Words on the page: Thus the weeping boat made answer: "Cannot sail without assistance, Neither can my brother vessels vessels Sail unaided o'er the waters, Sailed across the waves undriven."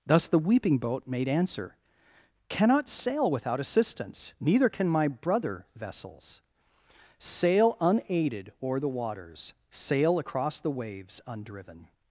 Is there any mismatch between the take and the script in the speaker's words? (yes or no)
yes